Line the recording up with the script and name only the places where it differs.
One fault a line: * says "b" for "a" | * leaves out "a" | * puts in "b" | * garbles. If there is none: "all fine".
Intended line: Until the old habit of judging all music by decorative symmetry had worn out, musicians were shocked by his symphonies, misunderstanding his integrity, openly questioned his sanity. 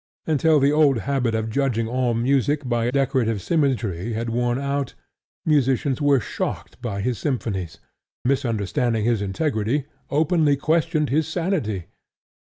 all fine